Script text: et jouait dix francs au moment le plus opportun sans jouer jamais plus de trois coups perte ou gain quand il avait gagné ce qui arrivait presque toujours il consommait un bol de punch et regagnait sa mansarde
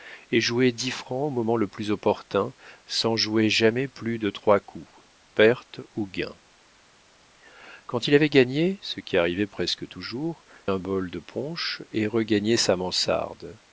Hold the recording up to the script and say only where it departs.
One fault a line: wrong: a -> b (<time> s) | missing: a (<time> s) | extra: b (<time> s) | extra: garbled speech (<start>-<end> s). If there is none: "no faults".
missing: il consommait (10.4 s)